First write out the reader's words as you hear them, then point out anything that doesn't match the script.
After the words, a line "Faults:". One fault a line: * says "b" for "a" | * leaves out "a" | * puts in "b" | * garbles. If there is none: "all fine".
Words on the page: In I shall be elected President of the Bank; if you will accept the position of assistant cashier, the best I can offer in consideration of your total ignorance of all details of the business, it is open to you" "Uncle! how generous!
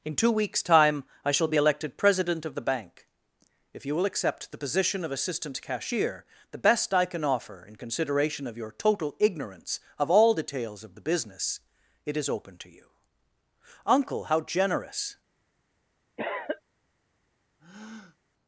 In two weeks time I shall be elected President of the Bank; if you will accept the position of assistant cashier, the best I can offer in consideration of your total ignorance of all details of the business, it is open to you" "Uncle! how generous!
Faults:
* puts in "two weeks time"